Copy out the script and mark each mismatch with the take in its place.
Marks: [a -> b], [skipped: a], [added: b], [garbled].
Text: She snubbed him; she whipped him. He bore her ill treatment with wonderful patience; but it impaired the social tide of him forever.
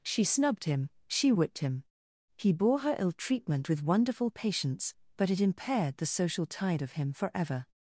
She snubbed him; she whipped him. He bore her ill treatment with wonderful patience; but it impaired the social tide of him forever.